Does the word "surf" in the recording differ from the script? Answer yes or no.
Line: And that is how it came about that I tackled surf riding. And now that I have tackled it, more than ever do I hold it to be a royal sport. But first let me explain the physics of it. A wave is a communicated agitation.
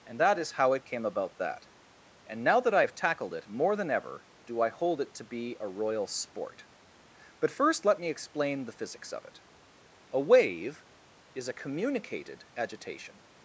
yes